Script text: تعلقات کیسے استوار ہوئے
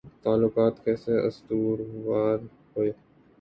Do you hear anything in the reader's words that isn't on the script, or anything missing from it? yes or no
no